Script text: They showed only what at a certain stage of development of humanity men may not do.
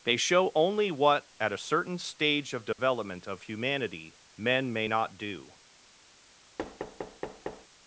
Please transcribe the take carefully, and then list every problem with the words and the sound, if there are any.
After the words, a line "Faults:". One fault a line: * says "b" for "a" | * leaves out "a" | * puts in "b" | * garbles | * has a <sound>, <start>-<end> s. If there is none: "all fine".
They show only what at a certain stage of development of humanity men may not do.
Faults:
* says "show" for "showed"
* has a dropout, 2.7-2.8 s
* has a thud, 6.6-7.7 s